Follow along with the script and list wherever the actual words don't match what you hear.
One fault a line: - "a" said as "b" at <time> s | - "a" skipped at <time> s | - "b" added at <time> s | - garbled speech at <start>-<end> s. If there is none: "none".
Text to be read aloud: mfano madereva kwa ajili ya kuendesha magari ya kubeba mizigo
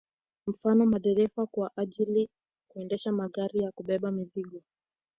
- "ya" skipped at 2.3 s